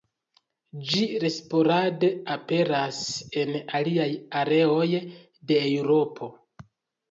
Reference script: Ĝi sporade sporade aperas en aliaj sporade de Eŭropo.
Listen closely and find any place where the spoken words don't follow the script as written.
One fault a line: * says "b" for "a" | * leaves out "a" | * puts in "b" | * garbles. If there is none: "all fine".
* leaves out "sporade"
* says "areoj" for "sporade"